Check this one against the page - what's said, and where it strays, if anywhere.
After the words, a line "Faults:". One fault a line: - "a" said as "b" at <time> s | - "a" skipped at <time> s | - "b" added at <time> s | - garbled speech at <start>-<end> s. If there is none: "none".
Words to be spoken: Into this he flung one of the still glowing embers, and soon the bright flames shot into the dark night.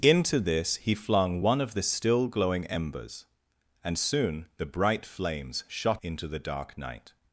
Into this he flung one of the still glowing embers, and soon the bright flames shot into the dark night.
Faults:
none